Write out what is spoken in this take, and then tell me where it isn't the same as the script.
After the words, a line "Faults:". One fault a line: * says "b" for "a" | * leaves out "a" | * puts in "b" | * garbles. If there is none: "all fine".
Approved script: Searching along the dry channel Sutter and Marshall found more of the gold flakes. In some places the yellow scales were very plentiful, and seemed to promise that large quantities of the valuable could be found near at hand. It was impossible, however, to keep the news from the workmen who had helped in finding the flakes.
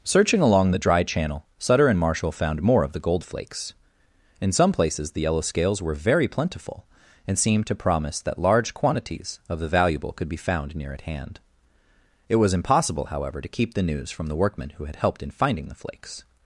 Searching along the dry channel Sutter and Marshall found more of the gold flakes. In some places the yellow scales were very plentiful, and seemed to promise that large quantities of the valuable could be found near at hand. It was impossible, however, to keep the news from the workmen who had helped in finding the flakes.
Faults:
all fine